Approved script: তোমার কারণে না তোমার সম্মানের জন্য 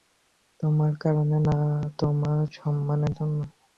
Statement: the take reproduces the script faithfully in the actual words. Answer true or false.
true